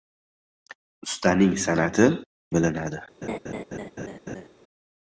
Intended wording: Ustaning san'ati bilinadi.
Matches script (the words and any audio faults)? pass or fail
fail